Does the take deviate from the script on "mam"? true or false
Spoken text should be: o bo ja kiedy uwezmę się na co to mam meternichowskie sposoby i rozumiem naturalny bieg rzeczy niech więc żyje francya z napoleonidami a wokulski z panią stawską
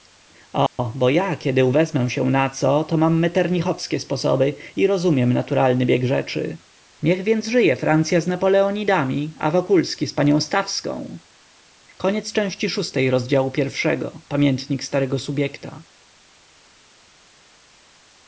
false